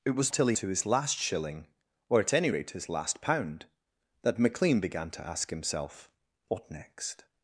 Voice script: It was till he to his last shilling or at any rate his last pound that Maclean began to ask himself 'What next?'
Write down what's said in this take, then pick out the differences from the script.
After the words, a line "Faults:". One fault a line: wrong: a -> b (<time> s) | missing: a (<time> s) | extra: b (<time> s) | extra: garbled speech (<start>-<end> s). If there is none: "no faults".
It was till he to his last shilling or at any rate his last pound that Maclean began to ask himself 'What next?'
Faults:
no faults